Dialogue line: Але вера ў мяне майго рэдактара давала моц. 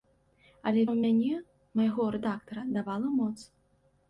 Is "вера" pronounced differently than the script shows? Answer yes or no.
yes